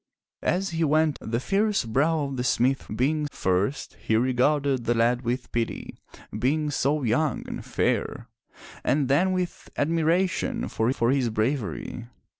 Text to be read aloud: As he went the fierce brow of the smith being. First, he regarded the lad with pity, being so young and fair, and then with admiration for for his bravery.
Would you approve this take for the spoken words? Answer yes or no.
yes